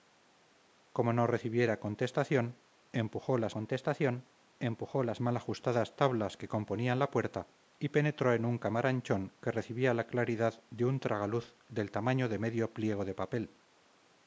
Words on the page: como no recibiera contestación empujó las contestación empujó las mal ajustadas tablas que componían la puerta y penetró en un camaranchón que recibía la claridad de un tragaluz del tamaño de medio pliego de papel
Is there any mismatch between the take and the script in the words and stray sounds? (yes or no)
no